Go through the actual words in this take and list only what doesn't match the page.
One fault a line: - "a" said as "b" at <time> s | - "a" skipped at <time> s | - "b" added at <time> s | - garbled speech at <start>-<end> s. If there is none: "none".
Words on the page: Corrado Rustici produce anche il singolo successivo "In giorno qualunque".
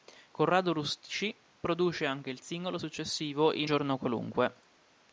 none